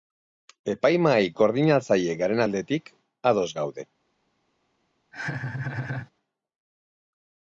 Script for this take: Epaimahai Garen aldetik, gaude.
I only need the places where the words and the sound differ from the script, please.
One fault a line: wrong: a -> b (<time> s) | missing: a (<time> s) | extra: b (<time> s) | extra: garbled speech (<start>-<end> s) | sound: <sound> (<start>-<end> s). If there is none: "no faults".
extra: Koordinatzaile (1.4 s)
extra: ados (3.3 s)
sound: laugh (5.1-6.1 s)